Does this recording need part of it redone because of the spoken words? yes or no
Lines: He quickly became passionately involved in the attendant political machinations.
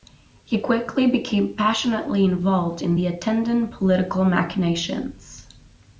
no